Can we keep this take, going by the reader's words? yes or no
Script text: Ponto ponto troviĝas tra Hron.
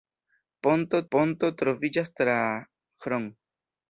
yes